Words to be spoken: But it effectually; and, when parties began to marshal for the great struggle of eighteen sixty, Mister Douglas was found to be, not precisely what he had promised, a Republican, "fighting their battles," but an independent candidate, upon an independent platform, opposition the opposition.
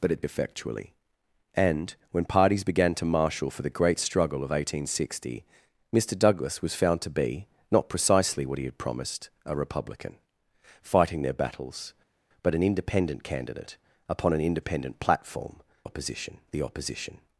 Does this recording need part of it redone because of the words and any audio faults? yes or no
no